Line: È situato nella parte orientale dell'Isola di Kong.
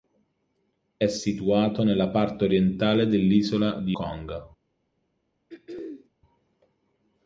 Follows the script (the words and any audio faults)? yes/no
no